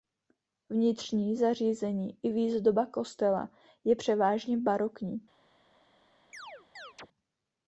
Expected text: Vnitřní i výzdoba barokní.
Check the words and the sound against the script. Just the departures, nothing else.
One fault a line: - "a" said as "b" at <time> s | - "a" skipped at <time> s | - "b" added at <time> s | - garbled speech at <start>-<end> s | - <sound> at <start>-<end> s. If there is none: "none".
- "zařízení" added at 1.3 s
- "kostela je převážně" added at 2.9 s
- chirp at 6.3-7.1 s